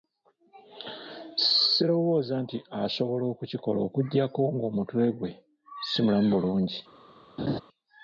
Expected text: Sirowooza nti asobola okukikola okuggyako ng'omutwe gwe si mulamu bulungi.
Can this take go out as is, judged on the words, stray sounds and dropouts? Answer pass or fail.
fail